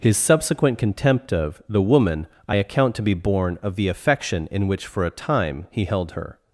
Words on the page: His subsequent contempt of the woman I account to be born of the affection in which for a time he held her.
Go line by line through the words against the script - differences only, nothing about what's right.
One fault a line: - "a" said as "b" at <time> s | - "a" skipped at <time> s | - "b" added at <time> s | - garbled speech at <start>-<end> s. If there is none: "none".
none